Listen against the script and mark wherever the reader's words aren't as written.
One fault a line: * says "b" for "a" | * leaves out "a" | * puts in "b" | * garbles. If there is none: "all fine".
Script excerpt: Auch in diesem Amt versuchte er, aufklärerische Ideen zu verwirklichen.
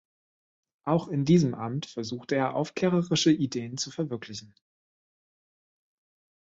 all fine